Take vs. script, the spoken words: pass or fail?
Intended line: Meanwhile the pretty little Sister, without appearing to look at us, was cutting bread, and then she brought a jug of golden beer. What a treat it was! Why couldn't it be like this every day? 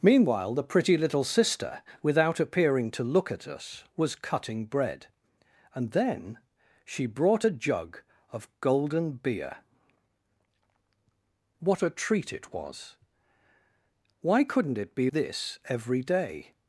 fail